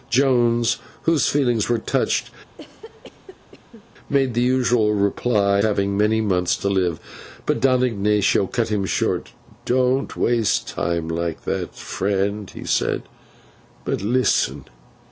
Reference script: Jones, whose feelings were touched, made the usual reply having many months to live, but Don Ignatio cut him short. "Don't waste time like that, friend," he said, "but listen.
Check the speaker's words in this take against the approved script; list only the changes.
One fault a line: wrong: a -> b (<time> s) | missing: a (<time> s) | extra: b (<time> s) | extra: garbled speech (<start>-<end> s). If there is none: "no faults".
no faults